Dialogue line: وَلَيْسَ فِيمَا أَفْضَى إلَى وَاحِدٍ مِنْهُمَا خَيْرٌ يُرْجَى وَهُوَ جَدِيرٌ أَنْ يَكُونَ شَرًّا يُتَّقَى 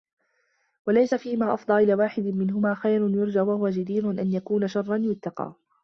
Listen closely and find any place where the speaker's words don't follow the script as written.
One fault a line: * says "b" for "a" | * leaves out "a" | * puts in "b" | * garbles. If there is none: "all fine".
all fine